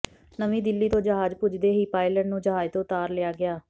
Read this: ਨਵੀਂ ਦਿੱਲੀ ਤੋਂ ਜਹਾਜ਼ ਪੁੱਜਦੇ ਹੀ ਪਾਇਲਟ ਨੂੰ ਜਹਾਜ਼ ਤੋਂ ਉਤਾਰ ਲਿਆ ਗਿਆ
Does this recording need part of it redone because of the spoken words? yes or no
no